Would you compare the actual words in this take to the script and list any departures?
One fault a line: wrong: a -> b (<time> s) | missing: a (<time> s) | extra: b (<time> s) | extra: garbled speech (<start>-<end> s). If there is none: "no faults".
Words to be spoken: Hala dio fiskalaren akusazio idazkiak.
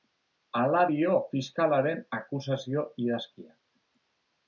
no faults